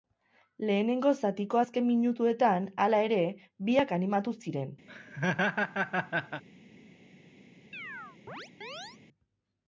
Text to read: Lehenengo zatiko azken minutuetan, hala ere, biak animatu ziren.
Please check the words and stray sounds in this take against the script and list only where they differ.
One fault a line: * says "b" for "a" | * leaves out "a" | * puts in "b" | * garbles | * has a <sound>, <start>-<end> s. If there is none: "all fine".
* has a laugh, 4.9-6.4 s
* has a chirp, 7.7-9.0 s